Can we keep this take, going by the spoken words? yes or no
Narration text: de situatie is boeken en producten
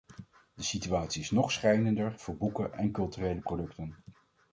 no